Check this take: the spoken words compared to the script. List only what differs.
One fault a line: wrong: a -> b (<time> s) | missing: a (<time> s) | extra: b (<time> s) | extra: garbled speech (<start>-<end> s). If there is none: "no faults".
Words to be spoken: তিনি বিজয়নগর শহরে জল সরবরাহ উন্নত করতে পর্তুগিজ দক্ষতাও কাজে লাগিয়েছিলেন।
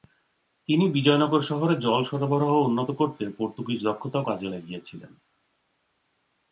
no faults